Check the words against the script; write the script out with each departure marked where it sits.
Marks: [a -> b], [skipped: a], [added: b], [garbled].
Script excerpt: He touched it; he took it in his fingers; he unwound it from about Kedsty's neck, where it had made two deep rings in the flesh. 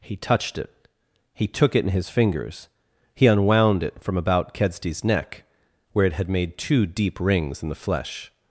He touched it; he took it in his fingers; he unwound it from about Kedsty's neck, where it had made two deep rings in the flesh.